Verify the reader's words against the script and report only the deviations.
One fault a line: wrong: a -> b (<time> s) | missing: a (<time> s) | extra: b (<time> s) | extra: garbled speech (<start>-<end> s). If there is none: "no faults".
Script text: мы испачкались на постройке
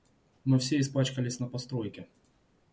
extra: все (0.6 s)